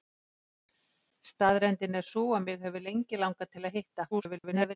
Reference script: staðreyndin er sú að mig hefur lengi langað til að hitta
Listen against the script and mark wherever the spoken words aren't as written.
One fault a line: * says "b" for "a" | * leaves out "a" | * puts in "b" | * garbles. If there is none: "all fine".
* garbles